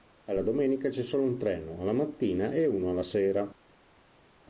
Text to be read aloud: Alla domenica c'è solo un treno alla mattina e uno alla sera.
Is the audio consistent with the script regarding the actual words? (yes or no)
yes